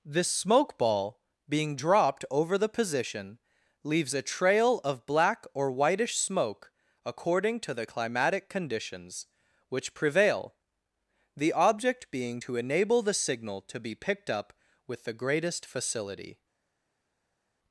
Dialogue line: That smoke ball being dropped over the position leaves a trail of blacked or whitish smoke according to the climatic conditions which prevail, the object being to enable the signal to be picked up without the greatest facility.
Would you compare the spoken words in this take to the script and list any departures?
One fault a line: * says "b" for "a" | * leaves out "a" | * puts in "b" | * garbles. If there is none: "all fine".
* says "This" for "That"
* says "black" for "blacked"
* says "with" for "without"